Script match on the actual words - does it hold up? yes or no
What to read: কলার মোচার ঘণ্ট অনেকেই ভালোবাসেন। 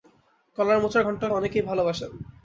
yes